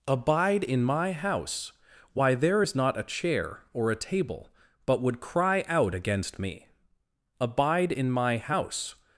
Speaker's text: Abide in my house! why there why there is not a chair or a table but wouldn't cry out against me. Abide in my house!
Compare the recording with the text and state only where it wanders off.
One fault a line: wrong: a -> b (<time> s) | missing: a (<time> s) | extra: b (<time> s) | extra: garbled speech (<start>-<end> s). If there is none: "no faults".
missing: why there (2.6 s)
wrong: wouldn't -> would (5.0 s)